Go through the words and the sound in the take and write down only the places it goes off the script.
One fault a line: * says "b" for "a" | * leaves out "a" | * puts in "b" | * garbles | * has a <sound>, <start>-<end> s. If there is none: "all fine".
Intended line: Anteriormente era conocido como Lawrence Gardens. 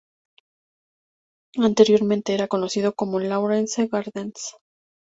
all fine